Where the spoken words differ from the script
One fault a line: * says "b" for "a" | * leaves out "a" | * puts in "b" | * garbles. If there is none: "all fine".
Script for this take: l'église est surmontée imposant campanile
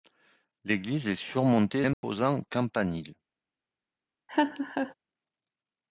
all fine